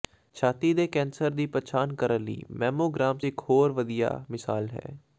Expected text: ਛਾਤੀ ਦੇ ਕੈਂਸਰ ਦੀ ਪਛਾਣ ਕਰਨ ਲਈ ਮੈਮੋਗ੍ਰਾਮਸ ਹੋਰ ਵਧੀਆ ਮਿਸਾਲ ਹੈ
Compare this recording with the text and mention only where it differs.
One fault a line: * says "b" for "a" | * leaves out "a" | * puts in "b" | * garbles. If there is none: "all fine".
* puts in "ਇਕ"